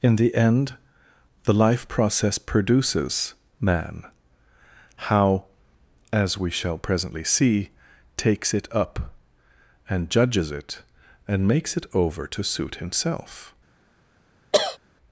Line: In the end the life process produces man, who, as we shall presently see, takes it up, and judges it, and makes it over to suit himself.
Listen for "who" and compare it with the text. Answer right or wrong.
wrong